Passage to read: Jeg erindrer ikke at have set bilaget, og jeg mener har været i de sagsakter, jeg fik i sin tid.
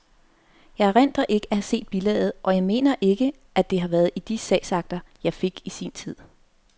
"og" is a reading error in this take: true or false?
false